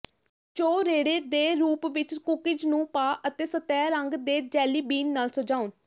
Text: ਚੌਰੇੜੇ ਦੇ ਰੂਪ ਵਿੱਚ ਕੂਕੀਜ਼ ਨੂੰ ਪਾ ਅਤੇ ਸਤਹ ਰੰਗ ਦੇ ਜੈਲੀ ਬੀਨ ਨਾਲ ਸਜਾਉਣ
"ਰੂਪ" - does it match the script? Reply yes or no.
yes